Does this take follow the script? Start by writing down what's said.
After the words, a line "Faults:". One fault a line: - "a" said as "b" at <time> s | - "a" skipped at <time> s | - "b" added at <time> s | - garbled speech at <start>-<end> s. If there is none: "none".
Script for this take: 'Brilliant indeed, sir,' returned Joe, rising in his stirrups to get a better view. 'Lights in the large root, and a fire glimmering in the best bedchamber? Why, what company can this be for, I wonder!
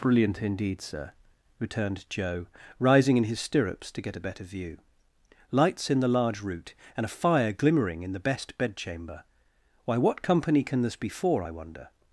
'Brilliant indeed, sir,' returned Joe, rising in his stirrups to get a better view. 'Lights in the large root, and a fire glimmering in the best bedchamber? Why, what company can this be for, I wonder!
Faults:
none